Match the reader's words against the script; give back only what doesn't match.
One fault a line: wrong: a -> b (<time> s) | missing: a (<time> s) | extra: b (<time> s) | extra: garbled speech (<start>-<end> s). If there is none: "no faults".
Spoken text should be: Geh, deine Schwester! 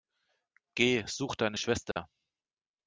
extra: such (1.1 s)